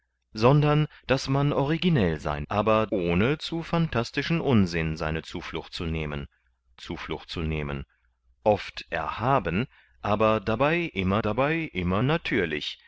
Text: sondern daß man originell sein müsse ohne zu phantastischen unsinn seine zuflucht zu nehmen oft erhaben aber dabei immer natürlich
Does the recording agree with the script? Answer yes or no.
no